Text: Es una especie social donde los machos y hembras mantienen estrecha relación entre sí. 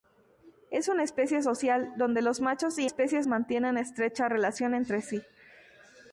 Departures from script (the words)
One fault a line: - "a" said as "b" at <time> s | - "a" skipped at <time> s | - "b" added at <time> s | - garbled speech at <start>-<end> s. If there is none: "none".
- "hembras" said as "especie" at 2.8 s